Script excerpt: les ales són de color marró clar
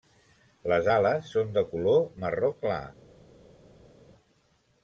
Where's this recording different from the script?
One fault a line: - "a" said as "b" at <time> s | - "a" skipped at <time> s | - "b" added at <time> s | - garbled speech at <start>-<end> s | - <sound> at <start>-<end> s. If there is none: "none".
none